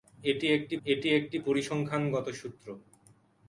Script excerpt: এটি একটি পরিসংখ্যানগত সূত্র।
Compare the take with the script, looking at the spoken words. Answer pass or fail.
fail